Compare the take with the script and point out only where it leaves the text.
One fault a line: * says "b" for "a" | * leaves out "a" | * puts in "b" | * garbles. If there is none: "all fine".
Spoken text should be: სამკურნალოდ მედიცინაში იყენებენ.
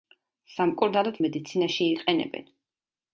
all fine